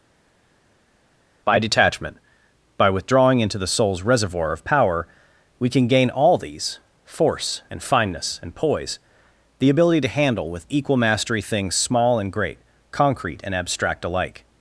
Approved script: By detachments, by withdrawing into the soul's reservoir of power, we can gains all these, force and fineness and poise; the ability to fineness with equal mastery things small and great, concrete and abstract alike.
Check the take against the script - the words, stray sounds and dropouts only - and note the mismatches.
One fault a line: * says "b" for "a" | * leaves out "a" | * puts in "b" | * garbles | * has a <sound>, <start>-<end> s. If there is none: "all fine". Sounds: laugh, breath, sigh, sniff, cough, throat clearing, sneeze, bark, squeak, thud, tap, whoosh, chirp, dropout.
* says "detachment" for "detachments"
* says "gain" for "gains"
* says "handle" for "fineness"